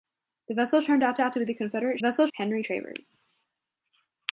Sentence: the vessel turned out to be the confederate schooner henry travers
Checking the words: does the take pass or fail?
fail